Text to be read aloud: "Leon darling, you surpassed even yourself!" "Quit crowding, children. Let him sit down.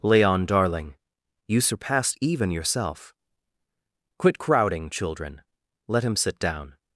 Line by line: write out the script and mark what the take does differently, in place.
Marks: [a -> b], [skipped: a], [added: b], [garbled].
"Leon darling, you surpassed even yourself!" "Quit crowding, children. Let him sit down.